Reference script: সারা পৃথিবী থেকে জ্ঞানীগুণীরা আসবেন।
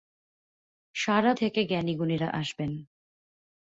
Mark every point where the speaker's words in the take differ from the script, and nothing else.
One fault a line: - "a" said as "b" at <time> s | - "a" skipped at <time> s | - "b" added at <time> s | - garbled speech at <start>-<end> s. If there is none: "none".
- "পৃথিবী" skipped at 1.3 s